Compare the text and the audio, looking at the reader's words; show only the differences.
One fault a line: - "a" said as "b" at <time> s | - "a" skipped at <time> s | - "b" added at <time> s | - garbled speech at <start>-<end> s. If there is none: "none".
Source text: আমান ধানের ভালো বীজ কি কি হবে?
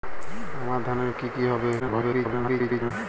- "ভালো বীজ" skipped at 1.1 s
- garbled speech at 1.8-2.9 s